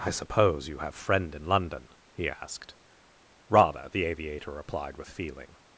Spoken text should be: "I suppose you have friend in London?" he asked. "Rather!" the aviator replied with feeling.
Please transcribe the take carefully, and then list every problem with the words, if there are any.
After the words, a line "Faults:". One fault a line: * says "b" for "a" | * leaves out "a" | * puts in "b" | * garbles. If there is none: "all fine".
"I suppose you have friend in London?" he asked. "Rather!" the aviator replied with feeling.
Faults:
all fine